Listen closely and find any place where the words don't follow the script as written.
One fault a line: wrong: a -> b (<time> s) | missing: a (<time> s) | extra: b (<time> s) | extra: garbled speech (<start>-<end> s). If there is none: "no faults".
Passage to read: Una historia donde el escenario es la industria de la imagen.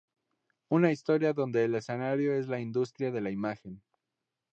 no faults